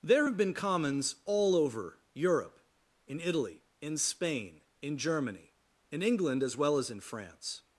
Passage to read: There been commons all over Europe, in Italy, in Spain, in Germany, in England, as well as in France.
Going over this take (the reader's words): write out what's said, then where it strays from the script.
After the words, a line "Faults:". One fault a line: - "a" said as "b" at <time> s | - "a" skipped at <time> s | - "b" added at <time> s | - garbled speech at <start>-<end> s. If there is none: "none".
There have been commons all over Europe, in Italy, in Spain, in Germany, in England, as well as in France.
Faults:
- "have" added at 0.2 s